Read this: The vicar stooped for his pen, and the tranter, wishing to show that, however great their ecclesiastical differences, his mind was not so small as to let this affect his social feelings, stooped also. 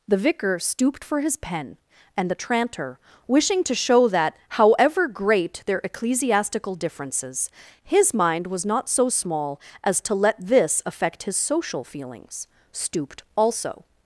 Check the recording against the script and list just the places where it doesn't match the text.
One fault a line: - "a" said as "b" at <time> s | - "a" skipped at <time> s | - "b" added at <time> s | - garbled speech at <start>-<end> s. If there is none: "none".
none